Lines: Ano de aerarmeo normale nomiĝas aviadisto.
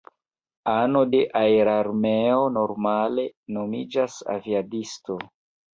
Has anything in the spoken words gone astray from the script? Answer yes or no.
no